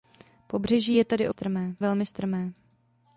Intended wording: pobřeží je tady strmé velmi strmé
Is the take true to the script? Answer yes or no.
yes